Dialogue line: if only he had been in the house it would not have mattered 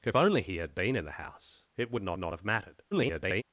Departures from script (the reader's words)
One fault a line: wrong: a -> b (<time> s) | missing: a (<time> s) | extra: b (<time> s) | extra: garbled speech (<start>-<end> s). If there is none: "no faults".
extra: not (2.2 s)
extra: garbled speech (2.9-3.4 s)